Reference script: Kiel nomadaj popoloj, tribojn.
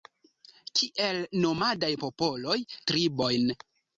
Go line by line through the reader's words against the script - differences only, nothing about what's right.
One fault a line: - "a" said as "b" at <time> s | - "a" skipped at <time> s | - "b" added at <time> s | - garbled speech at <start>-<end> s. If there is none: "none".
none